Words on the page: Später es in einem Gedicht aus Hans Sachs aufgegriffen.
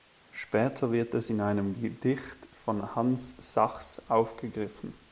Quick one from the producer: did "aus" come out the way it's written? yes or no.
no